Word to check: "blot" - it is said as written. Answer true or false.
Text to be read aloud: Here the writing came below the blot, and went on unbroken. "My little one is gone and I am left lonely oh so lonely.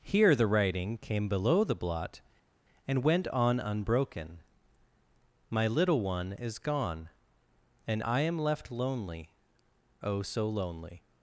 true